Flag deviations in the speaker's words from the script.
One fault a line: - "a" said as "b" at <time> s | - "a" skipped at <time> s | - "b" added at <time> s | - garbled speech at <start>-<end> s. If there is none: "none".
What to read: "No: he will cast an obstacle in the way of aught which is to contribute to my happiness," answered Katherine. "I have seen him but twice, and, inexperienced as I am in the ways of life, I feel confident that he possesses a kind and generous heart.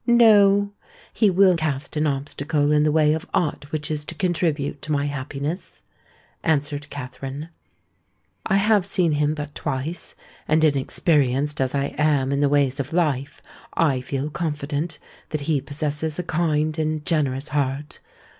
none